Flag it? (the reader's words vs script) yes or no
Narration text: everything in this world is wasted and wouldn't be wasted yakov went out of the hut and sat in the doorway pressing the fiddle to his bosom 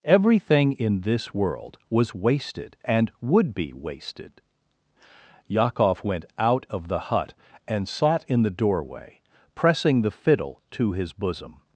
yes